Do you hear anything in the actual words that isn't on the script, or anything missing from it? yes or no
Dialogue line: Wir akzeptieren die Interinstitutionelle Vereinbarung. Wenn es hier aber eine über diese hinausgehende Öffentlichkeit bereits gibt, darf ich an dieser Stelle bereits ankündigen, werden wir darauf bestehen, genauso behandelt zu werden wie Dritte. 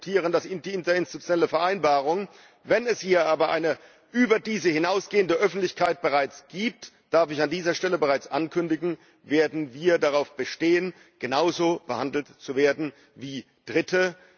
no